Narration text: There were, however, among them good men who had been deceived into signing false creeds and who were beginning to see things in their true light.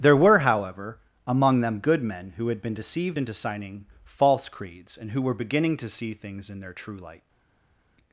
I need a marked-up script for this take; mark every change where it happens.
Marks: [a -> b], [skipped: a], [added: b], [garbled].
There were, however, among them good men who had been deceived into signing false creeds and who were beginning to see things in their true light.